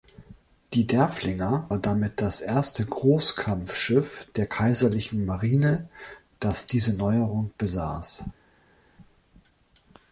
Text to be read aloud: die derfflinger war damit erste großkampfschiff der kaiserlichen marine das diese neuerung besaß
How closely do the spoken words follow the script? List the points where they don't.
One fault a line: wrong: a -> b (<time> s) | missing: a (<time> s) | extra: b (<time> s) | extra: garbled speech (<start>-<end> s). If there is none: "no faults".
extra: das (2.2 s)